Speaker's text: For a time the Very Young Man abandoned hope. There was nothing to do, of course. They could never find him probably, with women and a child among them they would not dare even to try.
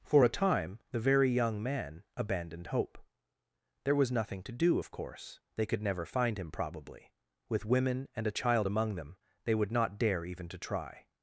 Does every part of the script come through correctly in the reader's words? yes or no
yes